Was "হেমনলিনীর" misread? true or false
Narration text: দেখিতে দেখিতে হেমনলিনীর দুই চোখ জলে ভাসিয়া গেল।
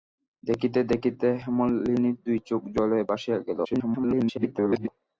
false